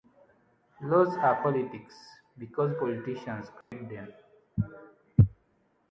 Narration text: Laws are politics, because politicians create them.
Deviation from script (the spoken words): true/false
false